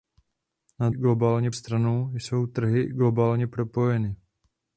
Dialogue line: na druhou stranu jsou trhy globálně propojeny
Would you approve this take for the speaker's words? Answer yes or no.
no